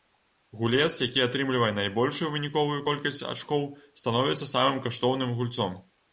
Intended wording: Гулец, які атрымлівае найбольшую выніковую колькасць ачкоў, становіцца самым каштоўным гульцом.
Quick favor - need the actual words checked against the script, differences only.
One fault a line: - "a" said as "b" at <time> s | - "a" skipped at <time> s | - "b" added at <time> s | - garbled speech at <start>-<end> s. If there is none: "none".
none